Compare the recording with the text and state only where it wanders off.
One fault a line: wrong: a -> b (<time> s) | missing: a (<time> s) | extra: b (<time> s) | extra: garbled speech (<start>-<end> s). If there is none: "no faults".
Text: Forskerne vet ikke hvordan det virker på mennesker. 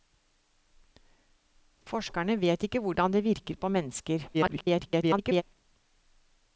extra: garbled speech (4.3-5.4 s)